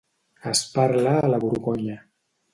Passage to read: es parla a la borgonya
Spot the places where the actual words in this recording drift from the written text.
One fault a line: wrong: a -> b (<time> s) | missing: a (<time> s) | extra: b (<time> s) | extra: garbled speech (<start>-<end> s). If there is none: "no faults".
no faults